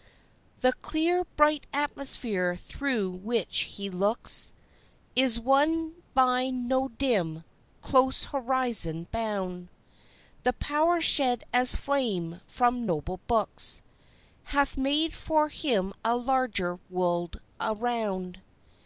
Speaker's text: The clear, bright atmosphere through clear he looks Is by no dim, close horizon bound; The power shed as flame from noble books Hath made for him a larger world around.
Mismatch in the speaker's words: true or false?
true